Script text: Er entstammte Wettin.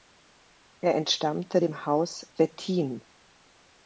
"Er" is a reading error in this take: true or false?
false